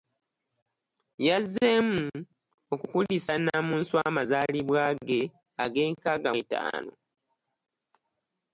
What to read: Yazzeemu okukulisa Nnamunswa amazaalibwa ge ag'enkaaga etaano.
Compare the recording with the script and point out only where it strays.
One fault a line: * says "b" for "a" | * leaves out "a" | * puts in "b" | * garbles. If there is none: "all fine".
all fine